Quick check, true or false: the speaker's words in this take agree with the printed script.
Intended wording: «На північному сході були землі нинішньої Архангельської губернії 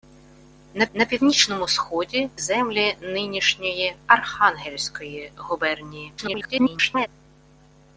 false